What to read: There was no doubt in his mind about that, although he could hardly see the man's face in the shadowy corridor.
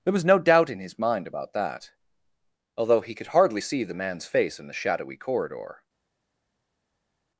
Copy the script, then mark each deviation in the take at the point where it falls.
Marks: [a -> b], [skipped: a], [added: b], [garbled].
There was no doubt in his mind about that, although he could hardly see the man's face in the shadowy corridor.